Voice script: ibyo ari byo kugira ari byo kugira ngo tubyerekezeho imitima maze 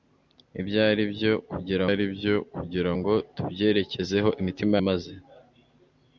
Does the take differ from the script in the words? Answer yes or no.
no